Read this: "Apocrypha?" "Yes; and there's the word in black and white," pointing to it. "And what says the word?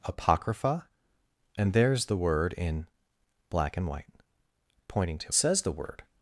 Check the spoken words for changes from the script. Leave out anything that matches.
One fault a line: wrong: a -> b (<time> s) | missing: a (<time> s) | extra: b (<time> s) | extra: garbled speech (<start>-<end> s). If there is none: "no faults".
missing: Yes (0.9 s)
missing: it And what (5.3 s)